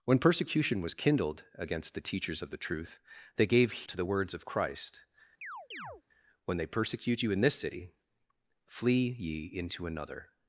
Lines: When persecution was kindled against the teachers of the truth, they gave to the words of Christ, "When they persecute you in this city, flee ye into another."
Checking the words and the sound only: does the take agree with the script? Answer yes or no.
no